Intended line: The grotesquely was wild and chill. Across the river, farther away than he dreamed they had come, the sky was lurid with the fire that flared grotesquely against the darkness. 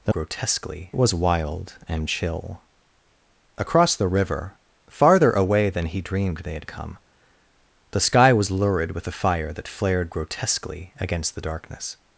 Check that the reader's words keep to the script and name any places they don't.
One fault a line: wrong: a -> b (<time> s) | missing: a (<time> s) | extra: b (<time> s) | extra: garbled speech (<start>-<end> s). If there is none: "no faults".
no faults